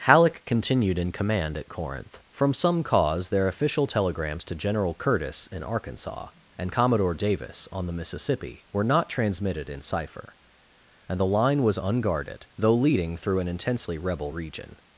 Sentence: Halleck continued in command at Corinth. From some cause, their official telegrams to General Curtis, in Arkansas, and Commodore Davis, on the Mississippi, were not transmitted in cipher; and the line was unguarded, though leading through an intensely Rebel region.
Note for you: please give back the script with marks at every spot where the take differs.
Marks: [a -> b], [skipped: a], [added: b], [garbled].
Halleck continued in command at Corinth. From some cause, their official telegrams to General Curtis, in Arkansas, and Commodore Davis, on the Mississippi, were not transmitted in cipher; and the line was unguarded, though leading through an intensely Rebel region.